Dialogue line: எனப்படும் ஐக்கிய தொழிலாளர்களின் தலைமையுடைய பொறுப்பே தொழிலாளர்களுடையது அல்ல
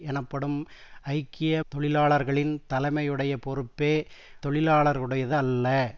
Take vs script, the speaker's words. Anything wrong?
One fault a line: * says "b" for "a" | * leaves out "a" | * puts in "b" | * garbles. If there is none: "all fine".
all fine